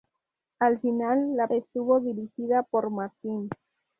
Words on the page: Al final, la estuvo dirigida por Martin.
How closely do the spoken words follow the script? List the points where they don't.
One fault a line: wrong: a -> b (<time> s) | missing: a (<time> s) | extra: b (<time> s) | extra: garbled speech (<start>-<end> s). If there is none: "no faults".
no faults